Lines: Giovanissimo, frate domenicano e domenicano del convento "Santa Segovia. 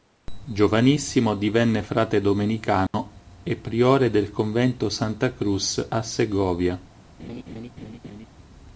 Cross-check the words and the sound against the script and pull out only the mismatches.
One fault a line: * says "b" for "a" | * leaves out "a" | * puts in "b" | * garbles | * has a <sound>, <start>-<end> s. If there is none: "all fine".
* puts in "divenne"
* has a dropout, 2.9-2.9 s
* says "priore" for "domenicano"
* puts in "Cruz a"
* has a laugh, 7.2-8.3 s